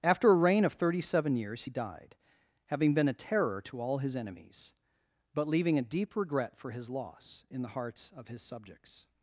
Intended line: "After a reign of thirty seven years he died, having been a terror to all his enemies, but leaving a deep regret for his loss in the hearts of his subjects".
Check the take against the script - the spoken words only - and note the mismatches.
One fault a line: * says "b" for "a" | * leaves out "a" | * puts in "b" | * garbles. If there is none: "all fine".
all fine